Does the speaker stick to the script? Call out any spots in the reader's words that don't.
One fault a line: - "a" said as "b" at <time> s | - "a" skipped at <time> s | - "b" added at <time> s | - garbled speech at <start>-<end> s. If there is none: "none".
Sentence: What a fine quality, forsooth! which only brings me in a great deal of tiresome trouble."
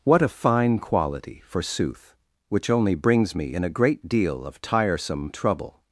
none